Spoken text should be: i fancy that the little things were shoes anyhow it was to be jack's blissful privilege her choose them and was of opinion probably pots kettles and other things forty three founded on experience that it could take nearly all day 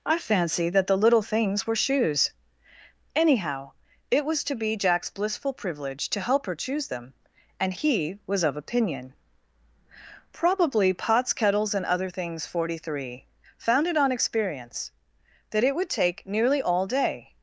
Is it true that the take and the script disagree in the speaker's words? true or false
true